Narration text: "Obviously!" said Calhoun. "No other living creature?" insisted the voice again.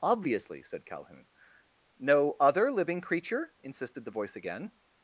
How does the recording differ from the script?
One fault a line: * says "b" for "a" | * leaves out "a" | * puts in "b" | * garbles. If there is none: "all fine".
all fine